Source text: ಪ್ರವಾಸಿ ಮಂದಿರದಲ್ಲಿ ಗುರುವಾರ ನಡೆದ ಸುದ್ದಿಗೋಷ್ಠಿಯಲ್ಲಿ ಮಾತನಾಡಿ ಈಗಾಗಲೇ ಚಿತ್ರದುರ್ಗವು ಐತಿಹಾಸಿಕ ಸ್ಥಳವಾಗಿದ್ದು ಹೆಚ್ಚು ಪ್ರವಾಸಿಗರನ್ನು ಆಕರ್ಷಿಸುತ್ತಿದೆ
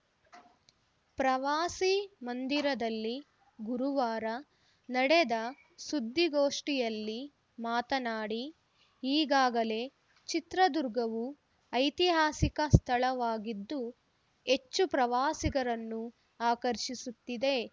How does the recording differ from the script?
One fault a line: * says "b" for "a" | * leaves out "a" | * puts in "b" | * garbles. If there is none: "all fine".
all fine